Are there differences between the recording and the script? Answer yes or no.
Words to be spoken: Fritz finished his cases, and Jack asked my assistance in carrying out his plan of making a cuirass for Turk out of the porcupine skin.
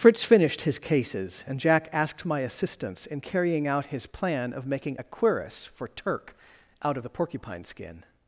no